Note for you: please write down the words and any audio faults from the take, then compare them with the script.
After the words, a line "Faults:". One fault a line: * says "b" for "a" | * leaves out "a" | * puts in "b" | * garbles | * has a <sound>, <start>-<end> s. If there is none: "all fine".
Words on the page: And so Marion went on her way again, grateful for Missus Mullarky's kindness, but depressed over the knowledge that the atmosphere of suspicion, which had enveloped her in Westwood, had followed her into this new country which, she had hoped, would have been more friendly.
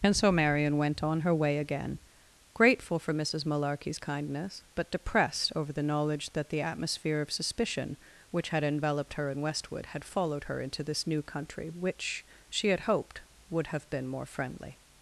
And so Marion went on her way again, grateful for Missus Mullarky's kindness, but depressed over the knowledge that the atmosphere of suspicion, which had enveloped her in Westwood, had followed her into this new country which, she had hoped, would have been more friendly.
Faults:
all fine